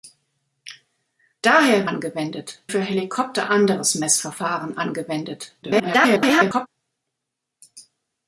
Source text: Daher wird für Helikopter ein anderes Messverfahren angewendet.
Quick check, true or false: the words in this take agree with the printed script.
false